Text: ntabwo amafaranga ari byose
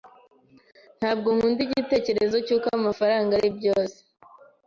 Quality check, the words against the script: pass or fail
fail